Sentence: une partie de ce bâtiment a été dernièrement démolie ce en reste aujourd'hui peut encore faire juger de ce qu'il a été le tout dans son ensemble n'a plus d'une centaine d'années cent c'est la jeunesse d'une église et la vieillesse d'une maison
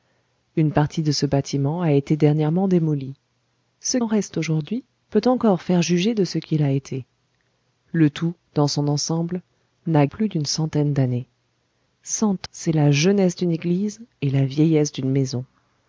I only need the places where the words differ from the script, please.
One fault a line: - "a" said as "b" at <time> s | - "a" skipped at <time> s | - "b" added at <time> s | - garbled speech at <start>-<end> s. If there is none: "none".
none